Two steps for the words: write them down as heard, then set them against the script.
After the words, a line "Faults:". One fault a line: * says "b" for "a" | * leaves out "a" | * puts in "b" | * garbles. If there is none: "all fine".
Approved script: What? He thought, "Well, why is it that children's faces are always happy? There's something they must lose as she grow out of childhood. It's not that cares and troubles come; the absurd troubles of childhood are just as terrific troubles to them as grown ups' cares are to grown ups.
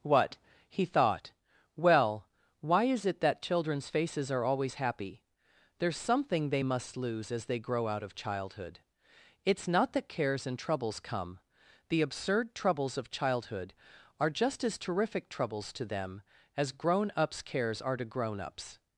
What? He thought, "Well, why is it that children's faces are always happy? There's something they must lose as they grow out of childhood. It's not that cares and troubles come; the absurd troubles of childhood are just as terrific troubles to them as grown ups' cares are to grown ups.
Faults:
* says "they" for "she"